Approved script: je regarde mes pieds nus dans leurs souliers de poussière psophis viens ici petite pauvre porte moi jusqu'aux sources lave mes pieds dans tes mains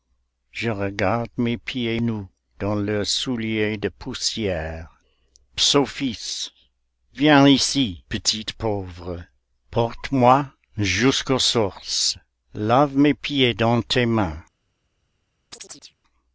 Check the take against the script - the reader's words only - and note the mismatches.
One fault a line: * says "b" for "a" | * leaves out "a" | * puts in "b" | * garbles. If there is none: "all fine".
all fine